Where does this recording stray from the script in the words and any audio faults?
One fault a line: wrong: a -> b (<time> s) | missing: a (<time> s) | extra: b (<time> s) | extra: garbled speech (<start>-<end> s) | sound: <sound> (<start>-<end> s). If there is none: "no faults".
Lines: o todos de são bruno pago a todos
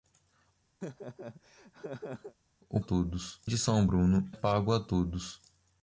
sound: laugh (0.8-2.3 s)